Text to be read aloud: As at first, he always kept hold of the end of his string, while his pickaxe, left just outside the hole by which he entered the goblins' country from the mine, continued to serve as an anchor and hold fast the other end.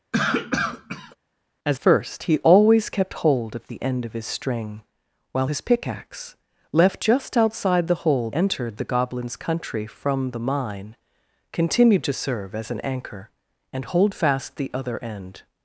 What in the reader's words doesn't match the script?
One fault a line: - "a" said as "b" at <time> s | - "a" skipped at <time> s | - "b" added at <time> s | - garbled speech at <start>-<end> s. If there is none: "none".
- "at" skipped at 1.8 s
- "by which he" skipped at 8.3 s